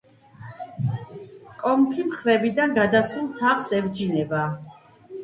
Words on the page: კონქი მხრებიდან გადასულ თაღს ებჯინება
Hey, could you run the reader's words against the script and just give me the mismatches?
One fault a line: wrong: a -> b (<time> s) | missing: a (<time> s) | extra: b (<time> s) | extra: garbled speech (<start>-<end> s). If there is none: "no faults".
no faults